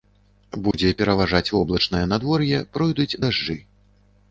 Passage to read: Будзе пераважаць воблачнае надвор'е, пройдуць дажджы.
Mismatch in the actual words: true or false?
false